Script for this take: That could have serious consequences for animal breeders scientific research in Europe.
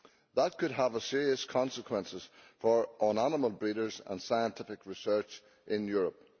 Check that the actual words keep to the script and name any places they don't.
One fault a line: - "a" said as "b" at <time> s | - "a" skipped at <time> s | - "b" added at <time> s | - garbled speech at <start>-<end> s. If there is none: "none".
- "and" added at 4.1 s